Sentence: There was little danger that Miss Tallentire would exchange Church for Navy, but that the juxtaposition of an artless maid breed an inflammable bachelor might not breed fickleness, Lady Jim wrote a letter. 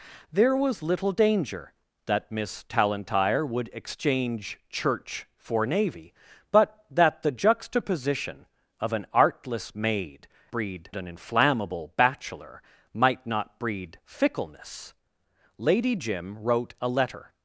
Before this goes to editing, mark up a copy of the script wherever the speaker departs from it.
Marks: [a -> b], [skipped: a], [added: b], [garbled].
There was little danger that Miss Tallentire would exchange Church for Navy, but that the juxtaposition of an artless maid breed an inflammable bachelor might not breed fickleness, Lady Jim wrote a letter.